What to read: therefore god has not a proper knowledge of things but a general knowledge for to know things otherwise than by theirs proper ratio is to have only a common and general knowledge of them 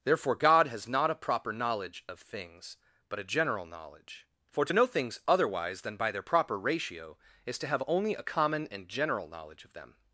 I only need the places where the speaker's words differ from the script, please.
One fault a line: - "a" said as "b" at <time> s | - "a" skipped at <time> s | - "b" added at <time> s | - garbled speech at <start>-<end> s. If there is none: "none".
- "theirs" said as "their" at 6.1 s